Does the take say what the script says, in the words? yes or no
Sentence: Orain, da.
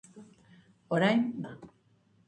yes